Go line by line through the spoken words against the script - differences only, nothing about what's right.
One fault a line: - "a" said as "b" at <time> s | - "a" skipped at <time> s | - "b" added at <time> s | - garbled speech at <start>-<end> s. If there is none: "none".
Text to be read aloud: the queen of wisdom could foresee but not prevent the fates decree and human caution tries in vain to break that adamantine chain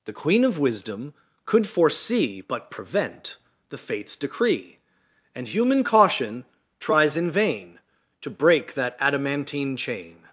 - "not" skipped at 2.7 s